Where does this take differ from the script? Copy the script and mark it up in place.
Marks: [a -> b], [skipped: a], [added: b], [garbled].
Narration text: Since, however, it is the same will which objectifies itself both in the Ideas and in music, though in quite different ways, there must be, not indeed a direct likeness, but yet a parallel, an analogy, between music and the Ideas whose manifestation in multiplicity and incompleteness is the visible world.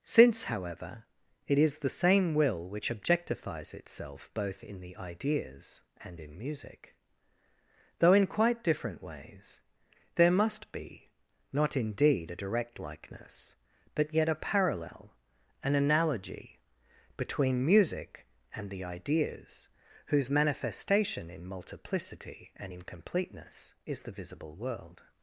Since, however, it is the same will which objectifies itself both in the Ideas and in music, though in quite different ways, there must be, not indeed a direct likeness, but yet a parallel, an analogy, between music and the Ideas whose manifestation in multiplicity and incompleteness is the visible world.